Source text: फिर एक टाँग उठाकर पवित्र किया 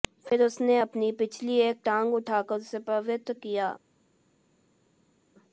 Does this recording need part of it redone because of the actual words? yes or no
yes